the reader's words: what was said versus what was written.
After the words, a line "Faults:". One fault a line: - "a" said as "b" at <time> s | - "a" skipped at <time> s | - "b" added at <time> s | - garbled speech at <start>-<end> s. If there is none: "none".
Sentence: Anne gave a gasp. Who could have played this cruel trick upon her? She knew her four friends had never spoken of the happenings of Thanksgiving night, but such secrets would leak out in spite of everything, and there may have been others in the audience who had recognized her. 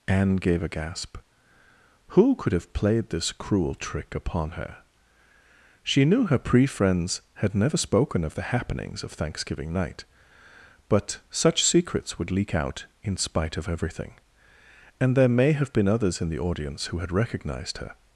Anne gave a gasp. Who could have played this cruel trick upon her? She knew her pre friends had never spoken of the happenings of Thanksgiving night, but such secrets would leak out in spite of everything, and there may have been others in the audience who had recognized her.
Faults:
- "four" said as "pre" at 6.4 s